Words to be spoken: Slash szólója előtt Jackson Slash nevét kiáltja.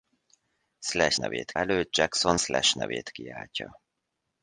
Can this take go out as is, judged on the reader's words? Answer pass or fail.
fail